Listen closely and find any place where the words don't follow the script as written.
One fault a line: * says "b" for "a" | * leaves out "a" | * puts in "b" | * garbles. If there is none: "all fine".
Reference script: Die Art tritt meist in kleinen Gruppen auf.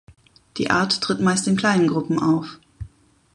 all fine